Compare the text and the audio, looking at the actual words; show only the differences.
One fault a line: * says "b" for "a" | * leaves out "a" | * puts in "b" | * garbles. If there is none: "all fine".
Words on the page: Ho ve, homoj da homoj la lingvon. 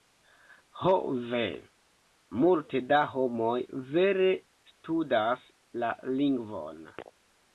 * says "multe" for "homoj"
* puts in "vere studas"